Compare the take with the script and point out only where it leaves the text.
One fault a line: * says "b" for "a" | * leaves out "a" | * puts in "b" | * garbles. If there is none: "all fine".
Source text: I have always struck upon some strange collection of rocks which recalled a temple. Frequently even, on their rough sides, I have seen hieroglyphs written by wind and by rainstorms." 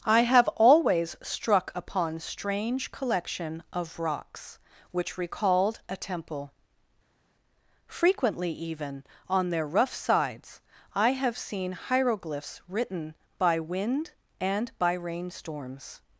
* leaves out "some"